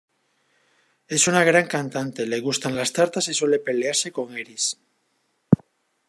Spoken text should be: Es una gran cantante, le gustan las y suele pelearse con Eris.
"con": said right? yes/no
yes